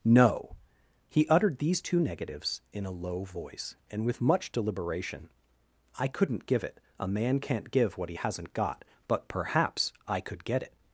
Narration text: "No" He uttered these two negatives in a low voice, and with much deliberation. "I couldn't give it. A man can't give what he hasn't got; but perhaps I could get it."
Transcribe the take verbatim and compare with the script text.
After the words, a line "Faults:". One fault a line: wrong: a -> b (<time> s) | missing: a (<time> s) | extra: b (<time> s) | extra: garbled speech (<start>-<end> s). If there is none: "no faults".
"No" He uttered these two negatives in a low voice, and with much deliberation. "I couldn't give it. A man can't give what he hasn't got; but perhaps I could get it."
Faults:
no faults